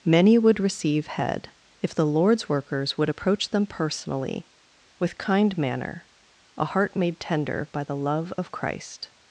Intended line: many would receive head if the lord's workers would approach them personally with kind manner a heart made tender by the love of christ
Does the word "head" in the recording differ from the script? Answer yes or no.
no